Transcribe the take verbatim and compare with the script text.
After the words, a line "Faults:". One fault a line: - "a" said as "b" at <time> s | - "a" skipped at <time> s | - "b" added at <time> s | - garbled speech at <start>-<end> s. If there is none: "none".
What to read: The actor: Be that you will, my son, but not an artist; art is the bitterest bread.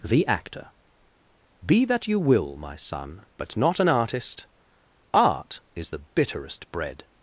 The actor: Be that you will, my son, but not an artist; art is the bitterest bread.
Faults:
none